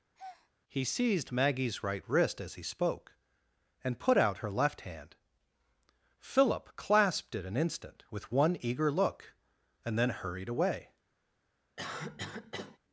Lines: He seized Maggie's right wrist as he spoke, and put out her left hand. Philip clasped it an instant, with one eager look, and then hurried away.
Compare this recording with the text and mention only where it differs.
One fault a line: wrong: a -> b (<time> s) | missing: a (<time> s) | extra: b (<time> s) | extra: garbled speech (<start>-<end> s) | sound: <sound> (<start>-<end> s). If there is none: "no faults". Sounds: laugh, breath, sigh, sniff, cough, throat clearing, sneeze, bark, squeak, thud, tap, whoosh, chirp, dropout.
sound: breath (0.1-0.5 s)
sound: cough (11.8-12.8 s)